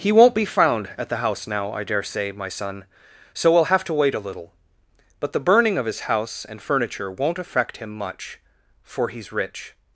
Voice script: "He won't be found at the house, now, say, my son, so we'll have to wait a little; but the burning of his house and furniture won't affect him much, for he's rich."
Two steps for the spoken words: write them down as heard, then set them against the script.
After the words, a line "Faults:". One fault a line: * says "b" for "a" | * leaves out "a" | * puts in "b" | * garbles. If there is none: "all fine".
"He won't be found at the house, now, I dare say, my son, so we'll have to wait a little; but the burning of his house and furniture won't affect him much, for he's rich."
Faults:
* puts in "I dare"